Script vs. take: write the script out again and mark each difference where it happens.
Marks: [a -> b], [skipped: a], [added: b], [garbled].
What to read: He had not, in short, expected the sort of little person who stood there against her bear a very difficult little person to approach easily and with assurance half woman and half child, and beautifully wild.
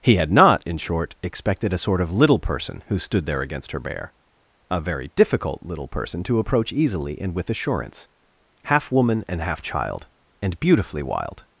He had not, in short, expected [the -> a] sort of little person who stood there against her bear a very difficult little person to approach easily and with assurance half woman and half child, and beautifully wild.